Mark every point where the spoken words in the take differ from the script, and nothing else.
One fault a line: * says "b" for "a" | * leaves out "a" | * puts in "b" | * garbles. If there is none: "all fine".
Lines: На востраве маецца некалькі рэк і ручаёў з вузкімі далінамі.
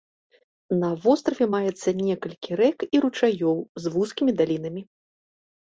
all fine